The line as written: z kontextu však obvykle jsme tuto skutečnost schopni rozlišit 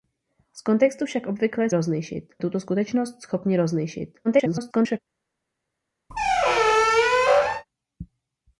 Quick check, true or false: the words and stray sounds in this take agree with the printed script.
false